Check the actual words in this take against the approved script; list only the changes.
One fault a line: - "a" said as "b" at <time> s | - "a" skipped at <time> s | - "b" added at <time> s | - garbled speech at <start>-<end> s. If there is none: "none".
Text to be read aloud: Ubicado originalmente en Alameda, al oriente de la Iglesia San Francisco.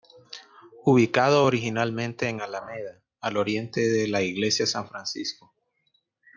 none